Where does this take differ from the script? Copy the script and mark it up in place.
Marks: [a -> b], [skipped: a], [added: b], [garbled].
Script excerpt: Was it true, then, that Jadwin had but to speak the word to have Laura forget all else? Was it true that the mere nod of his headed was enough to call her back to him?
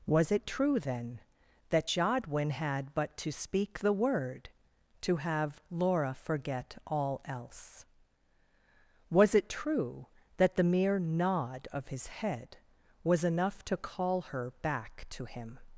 Was it true, then, that Jadwin had but to speak the word to have Laura forget all else? Was it true that the mere nod of his [headed -> head] was enough to call her back to him?